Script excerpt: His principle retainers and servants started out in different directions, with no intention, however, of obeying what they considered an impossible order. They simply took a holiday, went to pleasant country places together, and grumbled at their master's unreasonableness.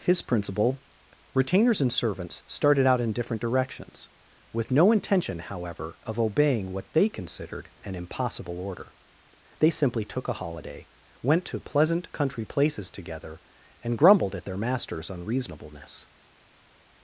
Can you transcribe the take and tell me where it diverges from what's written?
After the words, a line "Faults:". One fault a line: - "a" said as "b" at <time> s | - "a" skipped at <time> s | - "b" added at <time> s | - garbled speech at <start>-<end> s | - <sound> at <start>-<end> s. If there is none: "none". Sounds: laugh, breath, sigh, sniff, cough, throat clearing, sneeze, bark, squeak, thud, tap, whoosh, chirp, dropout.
His principle retainers and servants started out in different directions, with no intention, however, of obeying what they considered an impossible order. They simply took a holiday, went to pleasant country places together, and grumbled at their master's unreasonableness.
Faults:
none